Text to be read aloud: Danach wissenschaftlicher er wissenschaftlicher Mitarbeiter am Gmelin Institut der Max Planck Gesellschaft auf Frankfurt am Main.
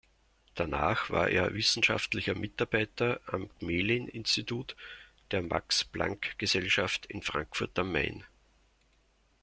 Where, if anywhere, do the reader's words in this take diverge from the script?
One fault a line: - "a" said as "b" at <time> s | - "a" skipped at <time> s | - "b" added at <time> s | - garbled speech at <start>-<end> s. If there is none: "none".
- "wissenschaftlicher" said as "war" at 1.1 s
- "auf" said as "in" at 7.0 s